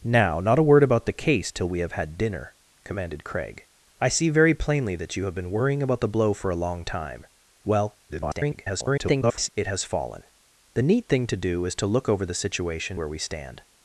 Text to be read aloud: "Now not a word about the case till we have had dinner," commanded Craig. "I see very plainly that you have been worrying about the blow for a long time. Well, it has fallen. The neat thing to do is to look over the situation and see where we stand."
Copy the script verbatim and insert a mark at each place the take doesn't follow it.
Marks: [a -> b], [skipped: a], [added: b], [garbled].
"Now not a word about the case till we have had dinner," commanded Craig. "I see very plainly that you have been worrying about the blow for a long time. Well, [garbled] it has fallen. The neat thing to do is to look over the situation [skipped: and see] where we stand."